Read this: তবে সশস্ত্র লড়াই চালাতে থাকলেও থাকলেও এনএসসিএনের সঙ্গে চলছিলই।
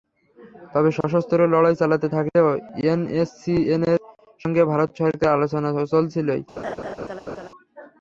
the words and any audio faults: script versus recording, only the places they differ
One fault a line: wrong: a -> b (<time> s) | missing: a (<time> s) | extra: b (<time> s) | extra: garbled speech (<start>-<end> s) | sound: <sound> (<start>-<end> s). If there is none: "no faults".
sound: dropout (1.0-1.0 s)
missing: থাকলেও (2.5 s)
extra: ভারত সরকারের আলোচনা (4.7 s)
sound: laugh (6.6-7.5 s)